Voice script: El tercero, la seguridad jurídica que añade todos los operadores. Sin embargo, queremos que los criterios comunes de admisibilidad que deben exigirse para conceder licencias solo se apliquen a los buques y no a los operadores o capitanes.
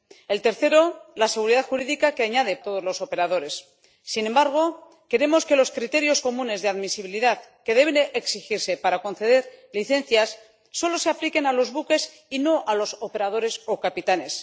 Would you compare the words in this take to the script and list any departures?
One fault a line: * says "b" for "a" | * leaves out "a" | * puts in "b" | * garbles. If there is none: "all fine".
all fine